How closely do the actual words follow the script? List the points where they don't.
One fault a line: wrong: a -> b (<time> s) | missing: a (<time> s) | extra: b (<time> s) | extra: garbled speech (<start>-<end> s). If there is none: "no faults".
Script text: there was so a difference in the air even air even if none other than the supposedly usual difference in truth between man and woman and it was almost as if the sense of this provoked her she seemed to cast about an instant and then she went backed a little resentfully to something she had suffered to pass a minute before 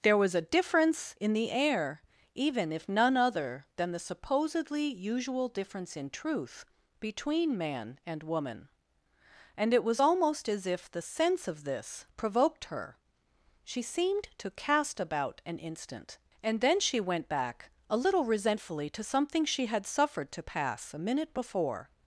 missing: so (0.3 s)
missing: air even (2.7 s)
wrong: backed -> back (17.3 s)